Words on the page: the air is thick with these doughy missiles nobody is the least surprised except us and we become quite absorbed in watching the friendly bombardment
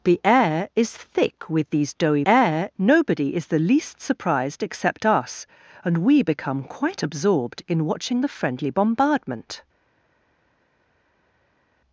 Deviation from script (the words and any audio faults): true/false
true